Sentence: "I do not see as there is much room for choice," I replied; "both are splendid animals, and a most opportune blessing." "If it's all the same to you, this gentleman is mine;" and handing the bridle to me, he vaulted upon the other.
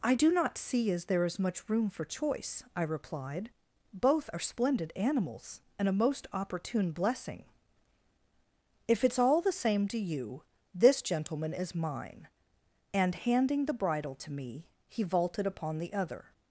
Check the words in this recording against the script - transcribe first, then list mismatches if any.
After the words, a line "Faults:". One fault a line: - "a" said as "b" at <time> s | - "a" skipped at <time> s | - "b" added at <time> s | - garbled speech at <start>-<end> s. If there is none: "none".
"I do not see as there is much room for choice," I replied; "both are splendid animals, and a most opportune blessing." "If it's all the same to you, this gentleman is mine;" and handing the bridle to me, he vaulted upon the other.
Faults:
none